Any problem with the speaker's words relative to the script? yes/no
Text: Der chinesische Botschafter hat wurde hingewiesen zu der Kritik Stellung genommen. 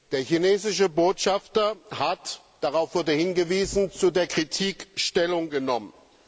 yes